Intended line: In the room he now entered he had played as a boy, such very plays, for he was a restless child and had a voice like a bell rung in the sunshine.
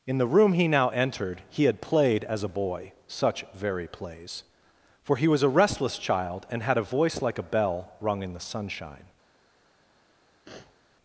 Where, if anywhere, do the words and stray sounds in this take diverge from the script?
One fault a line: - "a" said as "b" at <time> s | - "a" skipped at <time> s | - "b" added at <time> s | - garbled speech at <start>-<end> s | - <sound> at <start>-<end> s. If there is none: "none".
- sniff at 10.4-10.8 s